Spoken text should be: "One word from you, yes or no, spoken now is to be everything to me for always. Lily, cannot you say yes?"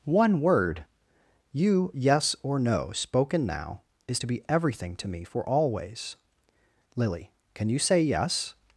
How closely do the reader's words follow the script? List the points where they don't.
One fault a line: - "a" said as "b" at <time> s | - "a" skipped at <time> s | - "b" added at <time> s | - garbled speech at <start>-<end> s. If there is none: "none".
- "from" skipped at 0.8 s
- "cannot" said as "can" at 7.5 s